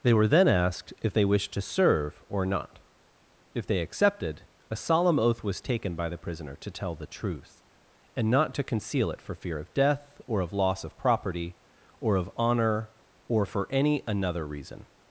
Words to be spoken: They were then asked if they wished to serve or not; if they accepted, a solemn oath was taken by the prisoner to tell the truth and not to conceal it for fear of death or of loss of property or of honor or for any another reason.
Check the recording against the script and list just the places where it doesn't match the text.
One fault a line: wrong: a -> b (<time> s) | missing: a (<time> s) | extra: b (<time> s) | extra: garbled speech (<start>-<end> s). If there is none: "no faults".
no faults